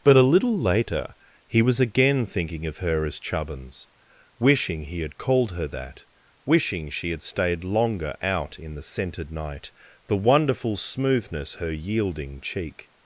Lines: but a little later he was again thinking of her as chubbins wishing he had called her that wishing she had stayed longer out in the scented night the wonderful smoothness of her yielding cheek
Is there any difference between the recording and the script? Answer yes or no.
yes